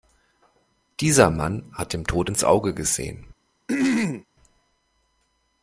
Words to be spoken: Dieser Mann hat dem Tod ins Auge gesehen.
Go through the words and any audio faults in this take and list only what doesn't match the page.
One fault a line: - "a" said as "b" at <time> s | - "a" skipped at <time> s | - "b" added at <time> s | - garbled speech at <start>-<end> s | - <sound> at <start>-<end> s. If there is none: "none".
- throat clearing at 3.7-4.2 s